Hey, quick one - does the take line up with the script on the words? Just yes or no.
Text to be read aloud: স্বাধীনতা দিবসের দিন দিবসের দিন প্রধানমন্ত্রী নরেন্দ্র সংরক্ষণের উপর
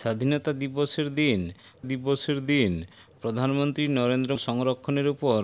yes